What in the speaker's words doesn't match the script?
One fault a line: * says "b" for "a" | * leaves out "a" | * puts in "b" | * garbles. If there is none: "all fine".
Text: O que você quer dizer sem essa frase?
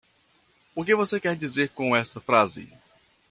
* says "com" for "sem"